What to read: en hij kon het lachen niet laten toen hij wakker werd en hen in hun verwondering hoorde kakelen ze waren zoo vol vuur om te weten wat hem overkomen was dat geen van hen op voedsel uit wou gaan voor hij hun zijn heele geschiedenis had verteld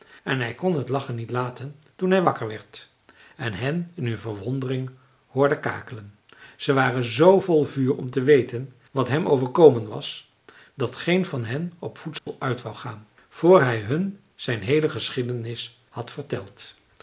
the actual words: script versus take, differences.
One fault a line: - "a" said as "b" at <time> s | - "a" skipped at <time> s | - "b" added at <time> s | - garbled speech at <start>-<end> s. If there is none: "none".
none